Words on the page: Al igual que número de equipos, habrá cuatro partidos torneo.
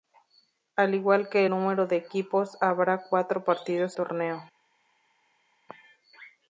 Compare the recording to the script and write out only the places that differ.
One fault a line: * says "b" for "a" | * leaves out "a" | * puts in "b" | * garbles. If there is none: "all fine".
all fine